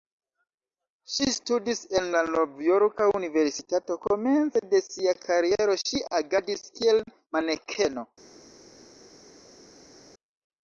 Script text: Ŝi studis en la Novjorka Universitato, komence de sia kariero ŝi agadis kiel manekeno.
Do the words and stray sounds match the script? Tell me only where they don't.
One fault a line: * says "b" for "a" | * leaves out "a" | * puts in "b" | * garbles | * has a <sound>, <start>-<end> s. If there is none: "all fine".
all fine